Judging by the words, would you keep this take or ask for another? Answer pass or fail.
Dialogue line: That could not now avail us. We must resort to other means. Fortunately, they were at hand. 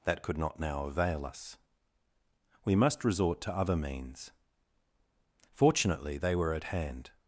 pass